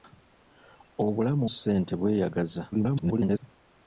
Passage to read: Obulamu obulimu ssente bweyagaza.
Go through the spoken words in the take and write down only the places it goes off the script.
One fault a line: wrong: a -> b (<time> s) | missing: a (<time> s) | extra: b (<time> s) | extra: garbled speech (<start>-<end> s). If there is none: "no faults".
missing: obulimu (1.4 s)
extra: garbled speech (2.7-3.4 s)